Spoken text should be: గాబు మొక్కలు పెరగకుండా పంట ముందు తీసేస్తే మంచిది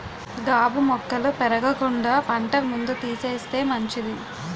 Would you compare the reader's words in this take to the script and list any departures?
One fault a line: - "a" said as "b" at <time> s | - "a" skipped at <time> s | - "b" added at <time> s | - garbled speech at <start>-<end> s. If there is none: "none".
none